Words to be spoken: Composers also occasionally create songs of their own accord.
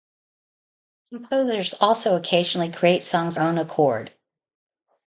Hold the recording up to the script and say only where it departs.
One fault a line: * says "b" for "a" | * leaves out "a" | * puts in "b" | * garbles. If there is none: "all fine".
* leaves out "of their"